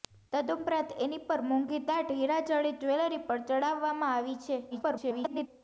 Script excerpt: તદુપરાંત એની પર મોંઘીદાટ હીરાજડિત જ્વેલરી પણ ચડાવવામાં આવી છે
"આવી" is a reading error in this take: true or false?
false